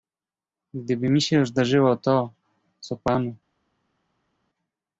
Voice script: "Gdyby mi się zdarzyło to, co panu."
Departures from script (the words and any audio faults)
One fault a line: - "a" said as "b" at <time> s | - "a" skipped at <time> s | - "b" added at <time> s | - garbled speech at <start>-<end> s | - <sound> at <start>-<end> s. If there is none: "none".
none